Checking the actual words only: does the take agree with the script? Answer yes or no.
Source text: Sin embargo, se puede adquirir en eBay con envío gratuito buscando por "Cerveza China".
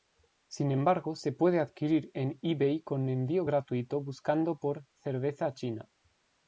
yes